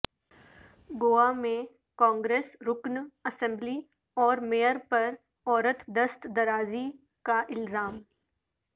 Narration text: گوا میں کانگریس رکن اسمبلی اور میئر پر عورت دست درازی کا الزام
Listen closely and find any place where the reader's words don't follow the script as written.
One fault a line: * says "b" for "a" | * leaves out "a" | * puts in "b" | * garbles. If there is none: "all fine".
all fine